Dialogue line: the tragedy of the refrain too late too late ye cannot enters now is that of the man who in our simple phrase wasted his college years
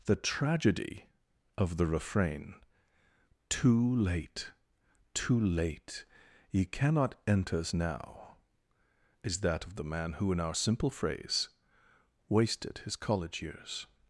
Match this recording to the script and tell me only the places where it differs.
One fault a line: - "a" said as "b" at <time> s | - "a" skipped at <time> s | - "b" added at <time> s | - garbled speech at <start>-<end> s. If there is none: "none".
none